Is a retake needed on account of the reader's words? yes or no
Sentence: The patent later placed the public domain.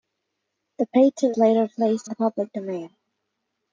no